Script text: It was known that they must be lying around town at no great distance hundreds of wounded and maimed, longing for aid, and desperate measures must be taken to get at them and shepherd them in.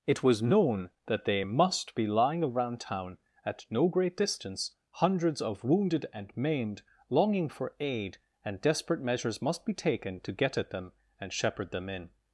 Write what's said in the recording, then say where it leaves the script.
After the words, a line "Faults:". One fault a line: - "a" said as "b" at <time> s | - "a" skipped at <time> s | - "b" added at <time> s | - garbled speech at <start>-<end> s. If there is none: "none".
It was known that they must be lying around town at no great distance hundreds of wounded and maimed, longing for aid, and desperate measures must be taken to get at them and shepherd them in.
Faults:
none